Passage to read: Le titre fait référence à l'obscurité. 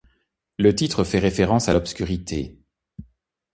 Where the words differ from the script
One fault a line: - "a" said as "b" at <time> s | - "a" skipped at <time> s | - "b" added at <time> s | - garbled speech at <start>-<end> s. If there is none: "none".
none